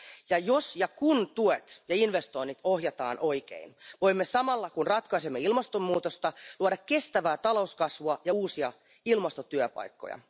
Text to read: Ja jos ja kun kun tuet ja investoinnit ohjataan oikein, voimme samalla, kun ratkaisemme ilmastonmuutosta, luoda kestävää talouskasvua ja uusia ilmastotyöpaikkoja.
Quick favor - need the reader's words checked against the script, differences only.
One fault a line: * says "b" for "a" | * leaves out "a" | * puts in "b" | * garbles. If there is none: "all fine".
* leaves out "kun"